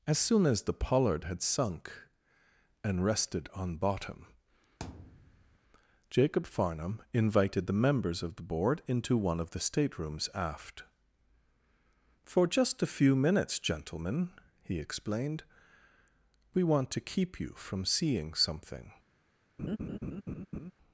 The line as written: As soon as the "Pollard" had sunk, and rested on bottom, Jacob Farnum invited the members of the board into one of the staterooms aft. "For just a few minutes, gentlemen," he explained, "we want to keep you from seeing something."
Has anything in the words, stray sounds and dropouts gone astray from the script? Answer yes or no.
yes